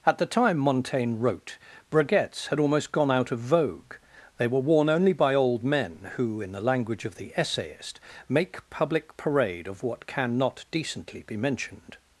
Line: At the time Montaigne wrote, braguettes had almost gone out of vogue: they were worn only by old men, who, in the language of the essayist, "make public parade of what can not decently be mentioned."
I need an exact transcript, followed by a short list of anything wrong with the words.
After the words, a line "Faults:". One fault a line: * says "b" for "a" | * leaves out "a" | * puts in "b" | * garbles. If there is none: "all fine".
At the time Montaigne wrote, braguettes had almost gone out of vogue: they were worn only by old men, who, in the language of the essayist, "make public parade of what can not decently be mentioned."
Faults:
all fine